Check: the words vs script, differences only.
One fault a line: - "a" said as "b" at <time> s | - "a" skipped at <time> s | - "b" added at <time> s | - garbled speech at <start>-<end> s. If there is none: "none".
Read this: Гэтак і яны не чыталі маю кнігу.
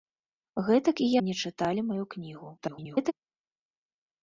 - "яны" skipped at 1.1 s
- garbled speech at 2.6-3.1 s